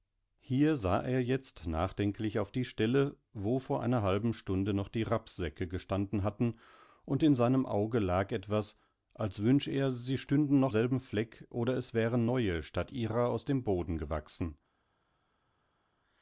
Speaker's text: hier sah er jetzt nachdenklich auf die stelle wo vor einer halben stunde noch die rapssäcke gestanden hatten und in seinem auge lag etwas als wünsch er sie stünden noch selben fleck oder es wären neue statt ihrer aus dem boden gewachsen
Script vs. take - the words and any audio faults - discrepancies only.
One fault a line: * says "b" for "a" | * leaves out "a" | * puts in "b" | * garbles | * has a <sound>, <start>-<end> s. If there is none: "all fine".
all fine